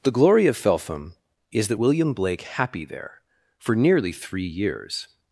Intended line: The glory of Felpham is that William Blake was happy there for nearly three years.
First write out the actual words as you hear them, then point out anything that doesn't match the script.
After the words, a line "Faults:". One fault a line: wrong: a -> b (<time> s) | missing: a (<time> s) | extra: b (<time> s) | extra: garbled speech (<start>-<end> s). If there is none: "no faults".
The glory of Felpham is that William Blake happy there for nearly three years.
Faults:
missing: was (2.4 s)